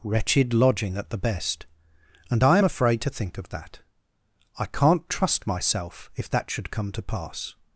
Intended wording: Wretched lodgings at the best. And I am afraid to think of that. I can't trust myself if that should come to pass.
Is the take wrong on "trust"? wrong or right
right